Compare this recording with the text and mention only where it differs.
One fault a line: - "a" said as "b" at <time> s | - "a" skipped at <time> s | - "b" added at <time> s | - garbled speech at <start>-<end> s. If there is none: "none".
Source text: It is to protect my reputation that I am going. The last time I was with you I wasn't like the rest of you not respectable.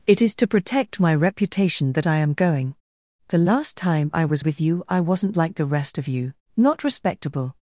none